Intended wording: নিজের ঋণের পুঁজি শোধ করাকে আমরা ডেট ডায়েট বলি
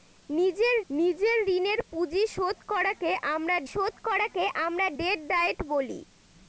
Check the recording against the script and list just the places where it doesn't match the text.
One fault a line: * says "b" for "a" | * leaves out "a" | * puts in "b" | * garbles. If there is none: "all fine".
* puts in "নিজের"
* puts in "শোধ করাকে আমরা"